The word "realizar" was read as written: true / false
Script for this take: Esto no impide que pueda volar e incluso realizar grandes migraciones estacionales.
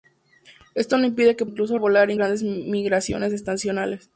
false